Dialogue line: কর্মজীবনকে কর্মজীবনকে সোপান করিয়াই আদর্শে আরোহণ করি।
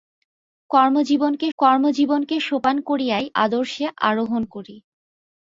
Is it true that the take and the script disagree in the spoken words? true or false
false